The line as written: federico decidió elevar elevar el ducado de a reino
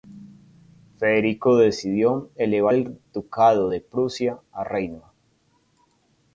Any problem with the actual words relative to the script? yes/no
yes